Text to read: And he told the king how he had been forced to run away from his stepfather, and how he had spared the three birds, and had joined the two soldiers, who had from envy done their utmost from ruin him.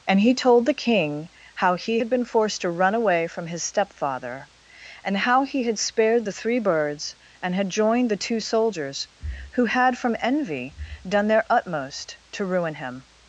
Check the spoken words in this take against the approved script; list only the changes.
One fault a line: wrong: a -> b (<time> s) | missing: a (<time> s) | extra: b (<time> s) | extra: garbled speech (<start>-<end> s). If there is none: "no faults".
wrong: from -> to (12.3 s)